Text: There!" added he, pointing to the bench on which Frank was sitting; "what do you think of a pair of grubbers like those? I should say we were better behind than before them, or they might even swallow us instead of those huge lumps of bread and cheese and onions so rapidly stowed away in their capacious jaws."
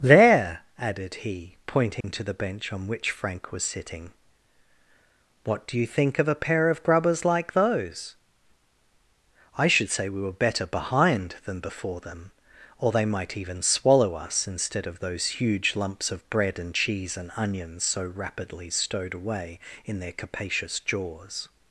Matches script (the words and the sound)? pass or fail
fail